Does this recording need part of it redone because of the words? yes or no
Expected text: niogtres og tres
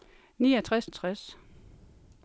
no